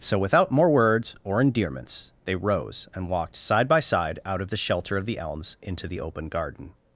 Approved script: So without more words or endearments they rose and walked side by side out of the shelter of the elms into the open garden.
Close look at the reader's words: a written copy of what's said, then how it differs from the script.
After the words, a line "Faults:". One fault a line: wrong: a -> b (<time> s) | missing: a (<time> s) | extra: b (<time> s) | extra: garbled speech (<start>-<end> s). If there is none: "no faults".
So without more words or endearments they rose and walked side by side out of the shelter of the elms into the open garden.
Faults:
no faults